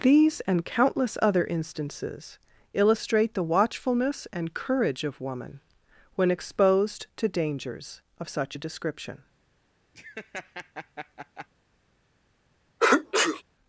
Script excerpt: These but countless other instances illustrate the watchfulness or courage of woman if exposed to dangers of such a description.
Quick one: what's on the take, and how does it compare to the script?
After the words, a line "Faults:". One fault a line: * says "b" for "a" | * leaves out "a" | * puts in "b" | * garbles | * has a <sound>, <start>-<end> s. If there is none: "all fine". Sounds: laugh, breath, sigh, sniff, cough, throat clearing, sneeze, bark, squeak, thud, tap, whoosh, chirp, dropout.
These and countless other instances illustrate the watchfulness and courage of woman when exposed to dangers of such a description.
Faults:
* says "and" for "but"
* says "and" for "or"
* says "when" for "if"
* has a laugh, 9.9-11.5 s
* has a sneeze, 12.8-13.4 s